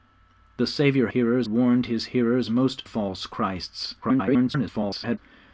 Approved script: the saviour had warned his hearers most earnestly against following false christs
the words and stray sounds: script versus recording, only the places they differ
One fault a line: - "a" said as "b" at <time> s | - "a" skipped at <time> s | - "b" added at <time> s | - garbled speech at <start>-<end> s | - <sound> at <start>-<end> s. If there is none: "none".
- "had" said as "hearers" at 1.1 s
- "earnestly against following" skipped at 2.8 s
- garbled speech at 4.0-5.2 s